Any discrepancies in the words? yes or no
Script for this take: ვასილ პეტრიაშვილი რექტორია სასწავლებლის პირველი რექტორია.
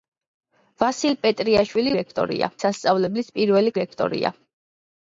no